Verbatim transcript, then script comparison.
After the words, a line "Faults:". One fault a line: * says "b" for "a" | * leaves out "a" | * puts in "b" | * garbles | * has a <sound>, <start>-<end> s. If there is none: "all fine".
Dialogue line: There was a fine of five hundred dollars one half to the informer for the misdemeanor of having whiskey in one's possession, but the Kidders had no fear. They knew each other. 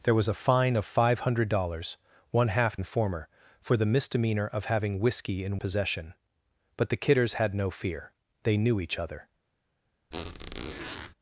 There was a fine of five hundred dollars one half informer for the misdemeanor of having whiskey in possession, but the Kidders had no fear. They knew each other.
Faults:
* leaves out "to the"
* leaves out "one's"
* has a squeak, 10.1-11.1 s